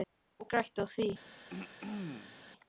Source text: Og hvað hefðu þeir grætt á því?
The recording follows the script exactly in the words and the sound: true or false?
false